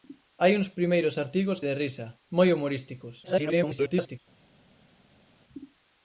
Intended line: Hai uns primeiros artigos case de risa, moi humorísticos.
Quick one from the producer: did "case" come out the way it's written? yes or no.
no